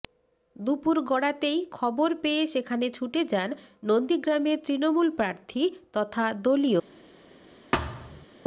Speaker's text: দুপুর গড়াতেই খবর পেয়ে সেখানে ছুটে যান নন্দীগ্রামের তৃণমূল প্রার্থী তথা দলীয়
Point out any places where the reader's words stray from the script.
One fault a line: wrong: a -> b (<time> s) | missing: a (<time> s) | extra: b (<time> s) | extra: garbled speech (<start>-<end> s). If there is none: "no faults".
no faults